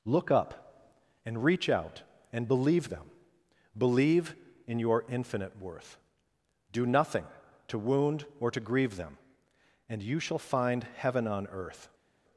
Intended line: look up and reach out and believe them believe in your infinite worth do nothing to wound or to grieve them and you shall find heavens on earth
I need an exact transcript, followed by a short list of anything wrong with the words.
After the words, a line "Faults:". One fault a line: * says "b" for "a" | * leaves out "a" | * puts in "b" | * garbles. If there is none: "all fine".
look up and reach out and believe them believe in your infinite worth do nothing to wound or to grieve them and you shall find heaven on earth
Faults:
* says "heaven" for "heavens"